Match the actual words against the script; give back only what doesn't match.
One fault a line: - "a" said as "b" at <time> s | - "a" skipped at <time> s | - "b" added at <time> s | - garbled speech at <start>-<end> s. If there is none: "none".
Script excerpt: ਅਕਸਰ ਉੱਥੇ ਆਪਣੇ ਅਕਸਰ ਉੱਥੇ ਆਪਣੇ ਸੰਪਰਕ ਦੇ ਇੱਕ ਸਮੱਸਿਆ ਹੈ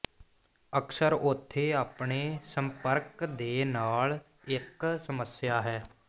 - "ਅਕਸਰ ਉੱਥੇ ਆਪਣੇ" skipped at 2.2 s
- "ਨਾਲ" added at 3.6 s